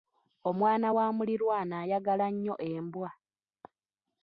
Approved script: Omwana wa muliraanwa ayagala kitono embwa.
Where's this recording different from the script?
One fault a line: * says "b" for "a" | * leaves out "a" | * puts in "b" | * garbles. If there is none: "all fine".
* says "nnyo" for "kitono"